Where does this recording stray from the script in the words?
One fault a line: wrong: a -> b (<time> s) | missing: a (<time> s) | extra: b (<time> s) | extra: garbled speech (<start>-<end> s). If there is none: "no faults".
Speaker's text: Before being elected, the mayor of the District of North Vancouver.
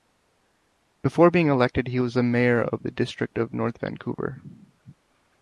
extra: he was (1.9 s)